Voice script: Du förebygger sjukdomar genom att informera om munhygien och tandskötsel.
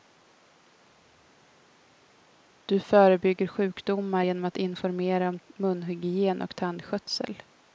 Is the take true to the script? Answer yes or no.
yes